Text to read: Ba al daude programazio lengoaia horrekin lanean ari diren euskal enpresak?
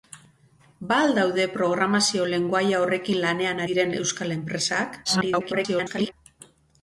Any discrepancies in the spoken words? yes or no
yes